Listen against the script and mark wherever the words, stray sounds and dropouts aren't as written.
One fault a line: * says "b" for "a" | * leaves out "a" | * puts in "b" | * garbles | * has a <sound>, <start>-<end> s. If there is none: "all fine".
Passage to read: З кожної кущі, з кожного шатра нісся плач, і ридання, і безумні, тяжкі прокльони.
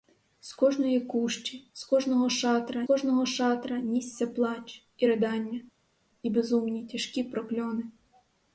* puts in "кожного шатра"